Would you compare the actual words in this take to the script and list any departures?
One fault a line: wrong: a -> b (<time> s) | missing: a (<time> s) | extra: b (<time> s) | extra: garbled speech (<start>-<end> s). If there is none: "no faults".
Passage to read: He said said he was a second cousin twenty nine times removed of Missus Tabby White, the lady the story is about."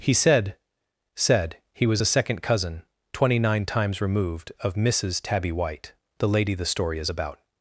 no faults